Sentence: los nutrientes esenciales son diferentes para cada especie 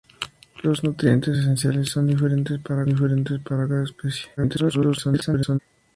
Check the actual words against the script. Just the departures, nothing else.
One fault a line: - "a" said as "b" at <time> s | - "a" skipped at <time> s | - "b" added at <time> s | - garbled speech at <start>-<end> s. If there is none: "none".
- "diferentes para" added at 2.8 s
- garbled speech at 4.4-5.6 s